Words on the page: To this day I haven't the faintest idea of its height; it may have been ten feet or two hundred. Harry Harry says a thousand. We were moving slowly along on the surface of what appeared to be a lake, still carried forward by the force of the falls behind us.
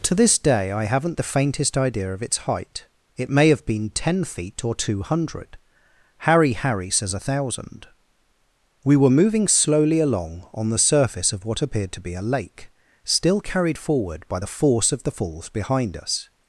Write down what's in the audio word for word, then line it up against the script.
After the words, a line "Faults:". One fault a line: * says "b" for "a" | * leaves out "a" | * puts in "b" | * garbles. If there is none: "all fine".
To this day I haven't the faintest idea of its height; it may have been ten feet or two hundred. Harry Harry says a thousand. We were moving slowly along on the surface of what appeared to be a lake, still carried forward by the force of the falls behind us.
Faults:
all fine